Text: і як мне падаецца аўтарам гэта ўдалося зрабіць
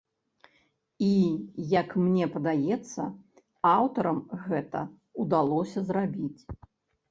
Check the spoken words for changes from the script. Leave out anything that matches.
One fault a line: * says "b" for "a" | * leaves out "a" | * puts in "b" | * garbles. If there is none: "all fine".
all fine